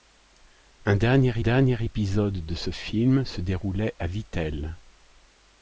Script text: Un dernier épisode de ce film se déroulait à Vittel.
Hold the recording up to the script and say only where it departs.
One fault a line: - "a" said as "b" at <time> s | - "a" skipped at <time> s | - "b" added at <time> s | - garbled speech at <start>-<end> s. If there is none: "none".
- "dernier" added at 1.4 s